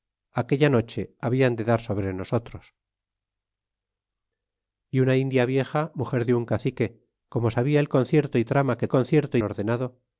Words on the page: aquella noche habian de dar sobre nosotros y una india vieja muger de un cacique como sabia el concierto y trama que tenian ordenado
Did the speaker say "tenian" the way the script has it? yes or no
no